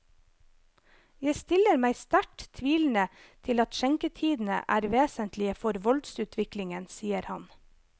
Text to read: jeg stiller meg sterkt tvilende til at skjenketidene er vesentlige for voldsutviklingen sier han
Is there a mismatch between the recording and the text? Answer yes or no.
no